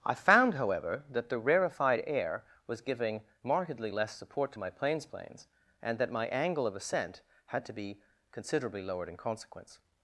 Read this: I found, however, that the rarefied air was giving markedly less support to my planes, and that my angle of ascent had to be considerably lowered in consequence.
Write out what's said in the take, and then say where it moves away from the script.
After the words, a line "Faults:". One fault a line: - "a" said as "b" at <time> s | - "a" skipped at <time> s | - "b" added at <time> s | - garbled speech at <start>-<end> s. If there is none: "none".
I found, however, that the rarefied air was giving markedly less support to my planes planes, and that my angle of ascent had to be considerably lowered in consequence.
Faults:
- "planes" added at 5.0 s